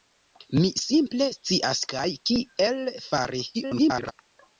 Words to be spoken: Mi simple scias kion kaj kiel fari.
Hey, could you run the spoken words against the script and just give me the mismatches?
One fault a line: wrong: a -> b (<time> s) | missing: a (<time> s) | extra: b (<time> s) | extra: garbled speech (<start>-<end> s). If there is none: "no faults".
missing: kion (1.8 s)
extra: garbled speech (3.5-4.1 s)